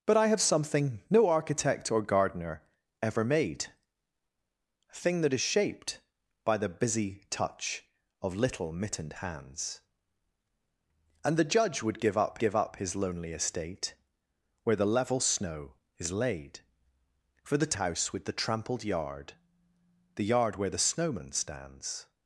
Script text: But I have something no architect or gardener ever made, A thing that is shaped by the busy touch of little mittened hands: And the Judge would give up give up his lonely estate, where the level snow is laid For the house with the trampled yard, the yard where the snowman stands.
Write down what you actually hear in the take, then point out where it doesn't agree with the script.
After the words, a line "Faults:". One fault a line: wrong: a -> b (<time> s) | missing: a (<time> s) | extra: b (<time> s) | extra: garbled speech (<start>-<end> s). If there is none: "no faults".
But I have something no architect or gardener ever made, A thing that is shaped by the busy touch of little mittened hands: And the Judge would give up give up his lonely estate, where the level snow is laid For the house with the trampled yard, the yard where the snowman stands.
Faults:
no faults